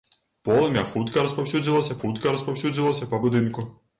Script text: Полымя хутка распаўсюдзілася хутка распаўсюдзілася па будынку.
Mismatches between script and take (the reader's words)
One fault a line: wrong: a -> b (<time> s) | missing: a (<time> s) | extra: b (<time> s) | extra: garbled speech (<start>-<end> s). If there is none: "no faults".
no faults